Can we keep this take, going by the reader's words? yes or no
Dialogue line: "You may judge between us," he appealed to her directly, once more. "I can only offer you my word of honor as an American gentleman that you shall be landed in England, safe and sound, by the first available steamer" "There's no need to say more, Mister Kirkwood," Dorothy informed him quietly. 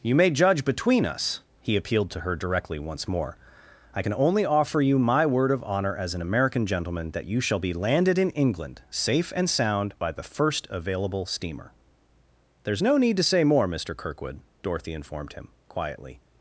yes